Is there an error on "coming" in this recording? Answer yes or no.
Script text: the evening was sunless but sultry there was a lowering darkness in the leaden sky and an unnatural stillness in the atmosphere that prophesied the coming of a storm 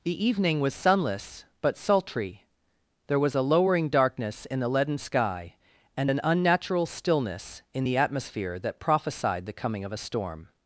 no